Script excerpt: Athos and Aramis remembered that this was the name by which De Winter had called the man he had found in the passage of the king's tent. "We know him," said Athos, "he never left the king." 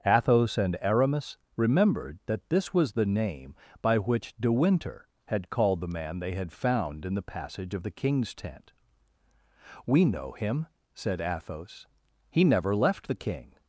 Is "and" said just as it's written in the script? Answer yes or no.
yes